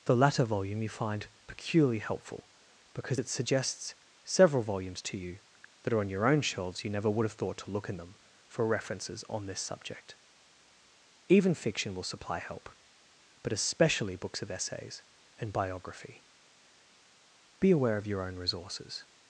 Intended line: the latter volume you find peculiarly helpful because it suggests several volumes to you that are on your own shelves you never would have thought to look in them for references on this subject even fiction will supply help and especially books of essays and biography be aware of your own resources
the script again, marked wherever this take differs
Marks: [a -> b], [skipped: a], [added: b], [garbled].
the latter volume you find peculiarly helpful because it suggests several volumes to you that are on your own shelves you never would have thought to look in them for references on this subject even fiction will supply help [and -> but] especially books of essays and biography be aware of your own resources